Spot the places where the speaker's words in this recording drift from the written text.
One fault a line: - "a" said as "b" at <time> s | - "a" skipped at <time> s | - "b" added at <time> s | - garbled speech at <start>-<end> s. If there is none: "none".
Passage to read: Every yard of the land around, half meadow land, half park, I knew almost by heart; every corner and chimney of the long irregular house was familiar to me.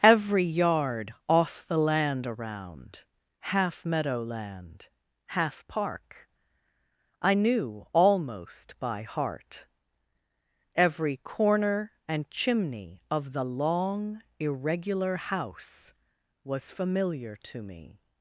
- "of" said as "off" at 1.3 s